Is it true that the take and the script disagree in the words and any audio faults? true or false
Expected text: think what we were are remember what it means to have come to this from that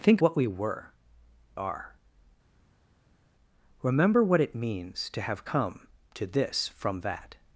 false